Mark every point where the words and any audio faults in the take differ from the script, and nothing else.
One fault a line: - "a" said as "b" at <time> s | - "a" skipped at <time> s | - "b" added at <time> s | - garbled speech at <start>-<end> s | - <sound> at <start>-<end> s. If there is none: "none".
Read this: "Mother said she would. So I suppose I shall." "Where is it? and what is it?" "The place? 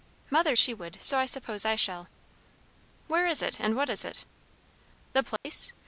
- "said" skipped at 0.6 s
- dropout at 5.4-5.4 s